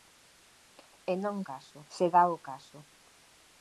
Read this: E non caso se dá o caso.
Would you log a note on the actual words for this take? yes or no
no